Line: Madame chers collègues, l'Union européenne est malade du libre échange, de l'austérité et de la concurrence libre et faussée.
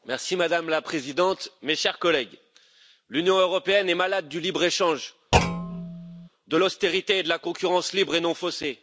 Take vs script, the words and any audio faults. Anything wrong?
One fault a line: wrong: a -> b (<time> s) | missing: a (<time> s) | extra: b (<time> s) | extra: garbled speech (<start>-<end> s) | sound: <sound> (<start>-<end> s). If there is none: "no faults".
extra: la Présidente mes (0.7 s)
sound: thud (5.3-6.3 s)
extra: non (8.2 s)